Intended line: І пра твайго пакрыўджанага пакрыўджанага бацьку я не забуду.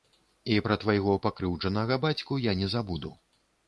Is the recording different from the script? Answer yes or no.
yes